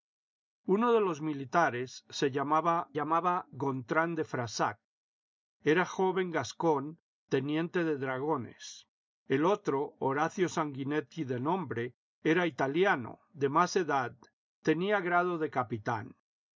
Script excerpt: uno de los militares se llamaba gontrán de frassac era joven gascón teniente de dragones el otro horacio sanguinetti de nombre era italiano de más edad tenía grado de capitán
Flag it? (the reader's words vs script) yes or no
yes